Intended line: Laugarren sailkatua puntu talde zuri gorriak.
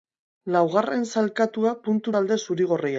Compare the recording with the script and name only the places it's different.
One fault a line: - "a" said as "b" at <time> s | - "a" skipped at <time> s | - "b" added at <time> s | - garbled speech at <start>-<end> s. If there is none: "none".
none